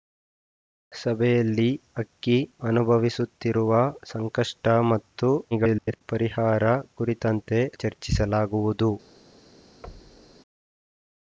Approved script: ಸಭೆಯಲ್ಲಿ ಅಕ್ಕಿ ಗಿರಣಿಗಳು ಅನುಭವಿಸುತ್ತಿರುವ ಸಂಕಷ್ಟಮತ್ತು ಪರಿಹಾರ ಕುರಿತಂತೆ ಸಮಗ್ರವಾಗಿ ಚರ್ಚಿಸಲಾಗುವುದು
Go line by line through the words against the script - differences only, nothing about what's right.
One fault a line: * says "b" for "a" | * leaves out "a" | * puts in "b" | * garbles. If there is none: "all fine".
* leaves out "ಗಿರಣಿಗಳು"
* garbles
* leaves out "ಸಮಗ್ರವಾಗಿ"